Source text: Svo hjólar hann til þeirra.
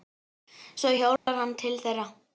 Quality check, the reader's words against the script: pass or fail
pass